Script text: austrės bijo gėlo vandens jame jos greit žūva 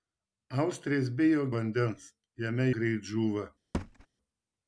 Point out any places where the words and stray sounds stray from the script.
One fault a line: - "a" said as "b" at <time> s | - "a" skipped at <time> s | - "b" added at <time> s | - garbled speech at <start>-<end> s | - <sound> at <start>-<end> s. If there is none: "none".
- "gėlo" skipped at 1.4 s
- "jos" skipped at 2.7 s
- thud at 3.7-4.1 s